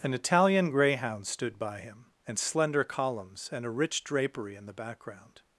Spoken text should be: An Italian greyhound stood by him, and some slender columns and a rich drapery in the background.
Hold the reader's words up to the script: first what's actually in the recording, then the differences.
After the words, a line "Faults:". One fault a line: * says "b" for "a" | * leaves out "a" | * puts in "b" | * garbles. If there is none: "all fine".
An Italian greyhound stood by him, and slender columns and a rich drapery in the background.
Faults:
* leaves out "some"